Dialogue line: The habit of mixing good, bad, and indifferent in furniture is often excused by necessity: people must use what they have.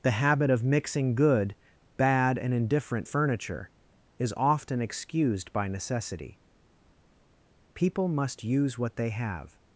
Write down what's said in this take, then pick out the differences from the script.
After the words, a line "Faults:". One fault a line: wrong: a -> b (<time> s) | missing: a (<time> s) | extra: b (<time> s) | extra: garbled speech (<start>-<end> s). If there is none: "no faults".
The habit of mixing good, bad, and indifferent furniture is often excused by necessity: people must use what they have.
Faults:
missing: in (3.1 s)